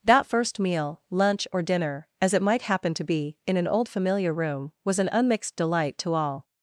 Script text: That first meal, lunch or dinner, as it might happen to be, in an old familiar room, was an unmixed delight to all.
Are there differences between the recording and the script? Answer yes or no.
no